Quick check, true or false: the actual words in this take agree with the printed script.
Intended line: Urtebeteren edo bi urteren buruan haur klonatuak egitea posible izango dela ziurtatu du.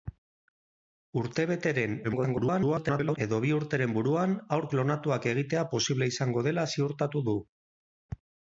false